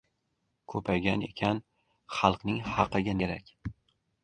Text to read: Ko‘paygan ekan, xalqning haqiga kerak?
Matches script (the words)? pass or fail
pass